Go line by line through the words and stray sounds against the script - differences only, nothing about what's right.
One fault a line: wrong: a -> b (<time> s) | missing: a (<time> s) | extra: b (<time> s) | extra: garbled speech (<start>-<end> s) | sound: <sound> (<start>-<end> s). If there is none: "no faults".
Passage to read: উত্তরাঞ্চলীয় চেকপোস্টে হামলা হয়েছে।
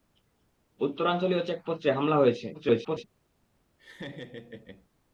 extra: garbled speech (2.5-3.0 s)
sound: laugh (3.8-4.9 s)